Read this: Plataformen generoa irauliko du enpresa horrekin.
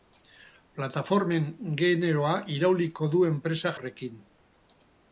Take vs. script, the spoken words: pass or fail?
pass